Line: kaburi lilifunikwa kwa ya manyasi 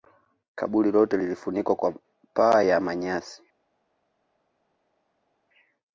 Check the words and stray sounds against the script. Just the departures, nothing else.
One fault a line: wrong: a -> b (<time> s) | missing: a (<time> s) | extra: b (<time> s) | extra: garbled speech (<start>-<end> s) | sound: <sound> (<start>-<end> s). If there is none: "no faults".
extra: lote (0.9 s)
extra: paa (2.3 s)